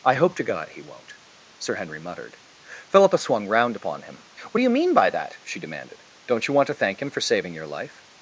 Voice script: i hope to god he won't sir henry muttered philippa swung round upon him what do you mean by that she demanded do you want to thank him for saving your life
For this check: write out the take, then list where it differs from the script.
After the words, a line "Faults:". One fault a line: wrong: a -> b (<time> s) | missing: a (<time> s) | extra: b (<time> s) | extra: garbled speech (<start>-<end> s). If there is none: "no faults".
i hope to god he won't sir henry muttered philippa swung round upon him what do you mean by that she demanded don't you want to thank him for saving your life
Faults:
wrong: do -> don't (6.3 s)